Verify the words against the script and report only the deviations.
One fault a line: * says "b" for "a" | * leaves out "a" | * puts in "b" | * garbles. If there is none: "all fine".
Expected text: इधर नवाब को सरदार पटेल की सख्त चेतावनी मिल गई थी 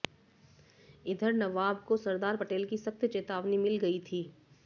all fine